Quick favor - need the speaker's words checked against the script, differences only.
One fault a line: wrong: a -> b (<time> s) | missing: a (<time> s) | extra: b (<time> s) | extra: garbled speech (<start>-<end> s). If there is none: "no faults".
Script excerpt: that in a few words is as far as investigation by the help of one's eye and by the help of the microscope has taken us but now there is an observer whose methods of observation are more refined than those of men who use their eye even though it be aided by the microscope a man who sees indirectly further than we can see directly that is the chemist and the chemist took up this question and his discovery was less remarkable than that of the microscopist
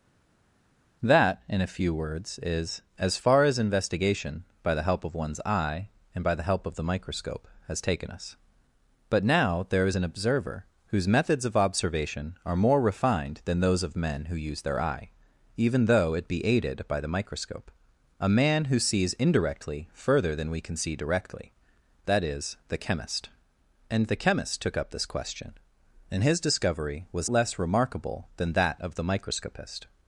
no faults